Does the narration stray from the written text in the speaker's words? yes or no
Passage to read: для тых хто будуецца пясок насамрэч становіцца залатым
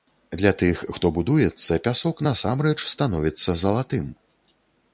no